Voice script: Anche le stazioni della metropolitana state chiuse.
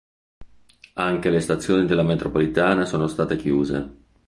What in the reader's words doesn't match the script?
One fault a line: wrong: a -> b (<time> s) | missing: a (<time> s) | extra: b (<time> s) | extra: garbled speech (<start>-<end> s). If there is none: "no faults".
extra: sono (2.9 s)